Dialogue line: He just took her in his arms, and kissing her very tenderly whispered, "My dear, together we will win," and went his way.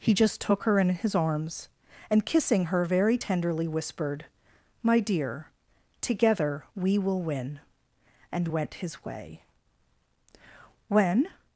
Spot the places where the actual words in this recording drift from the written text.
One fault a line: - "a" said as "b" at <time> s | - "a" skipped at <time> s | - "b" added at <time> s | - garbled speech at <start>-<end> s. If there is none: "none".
- "When" added at 10.9 s